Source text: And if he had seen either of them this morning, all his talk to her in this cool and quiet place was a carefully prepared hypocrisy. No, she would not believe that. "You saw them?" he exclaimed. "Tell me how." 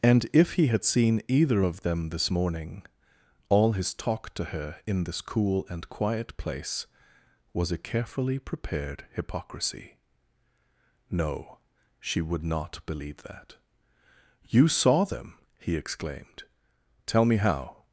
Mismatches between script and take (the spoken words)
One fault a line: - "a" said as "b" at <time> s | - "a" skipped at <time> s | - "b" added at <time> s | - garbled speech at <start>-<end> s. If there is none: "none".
none